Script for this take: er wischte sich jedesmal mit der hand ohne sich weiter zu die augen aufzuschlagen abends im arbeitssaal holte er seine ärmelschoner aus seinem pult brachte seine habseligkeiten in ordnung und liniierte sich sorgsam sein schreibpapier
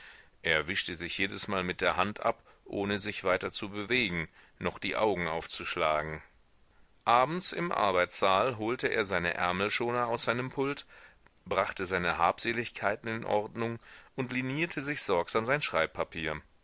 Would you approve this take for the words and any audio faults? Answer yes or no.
no